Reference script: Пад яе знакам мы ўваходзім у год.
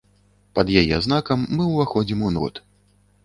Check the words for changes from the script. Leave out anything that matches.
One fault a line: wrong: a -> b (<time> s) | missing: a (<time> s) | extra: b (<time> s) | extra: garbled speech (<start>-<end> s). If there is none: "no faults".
no faults